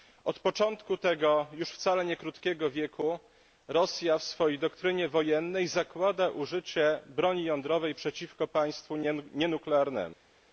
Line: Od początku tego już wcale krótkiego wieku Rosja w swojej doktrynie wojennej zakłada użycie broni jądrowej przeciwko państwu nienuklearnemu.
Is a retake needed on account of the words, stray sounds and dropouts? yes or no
yes